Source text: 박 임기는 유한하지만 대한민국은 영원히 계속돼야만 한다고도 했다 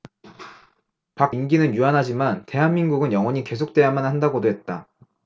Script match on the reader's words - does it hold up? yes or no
yes